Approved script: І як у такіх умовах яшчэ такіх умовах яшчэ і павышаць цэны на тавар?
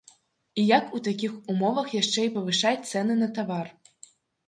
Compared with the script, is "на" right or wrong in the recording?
right